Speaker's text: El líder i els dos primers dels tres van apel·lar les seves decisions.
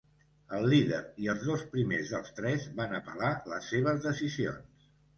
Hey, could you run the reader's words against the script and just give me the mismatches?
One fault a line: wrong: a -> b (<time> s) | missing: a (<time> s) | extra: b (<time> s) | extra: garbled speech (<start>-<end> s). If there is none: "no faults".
no faults